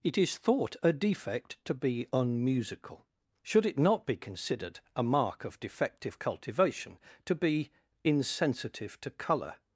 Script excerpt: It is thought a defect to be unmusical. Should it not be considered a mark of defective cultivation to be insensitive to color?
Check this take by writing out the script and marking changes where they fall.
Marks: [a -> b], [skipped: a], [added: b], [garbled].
It is thought a defect to be unmusical. Should it not be considered a mark of defective cultivation to be insensitive to color?